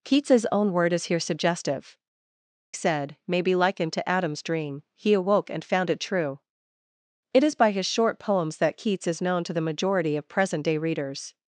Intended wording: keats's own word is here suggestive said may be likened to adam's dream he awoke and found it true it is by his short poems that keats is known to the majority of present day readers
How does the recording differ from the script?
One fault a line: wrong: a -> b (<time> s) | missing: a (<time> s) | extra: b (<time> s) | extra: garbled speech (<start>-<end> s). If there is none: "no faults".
no faults